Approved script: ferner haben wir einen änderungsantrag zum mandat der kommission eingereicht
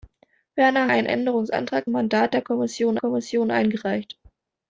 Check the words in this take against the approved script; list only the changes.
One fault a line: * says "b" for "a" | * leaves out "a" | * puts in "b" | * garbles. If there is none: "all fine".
* leaves out "haben wir"
* leaves out "zum"
* puts in "kommission"